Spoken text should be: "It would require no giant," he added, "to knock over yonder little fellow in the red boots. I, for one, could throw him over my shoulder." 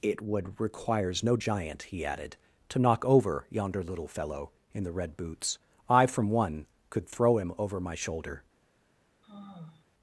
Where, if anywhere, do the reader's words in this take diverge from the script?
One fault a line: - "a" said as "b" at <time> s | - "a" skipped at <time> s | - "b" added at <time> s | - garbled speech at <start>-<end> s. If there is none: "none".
- "require" said as "requires" at 0.6 s
- "for" said as "from" at 6.1 s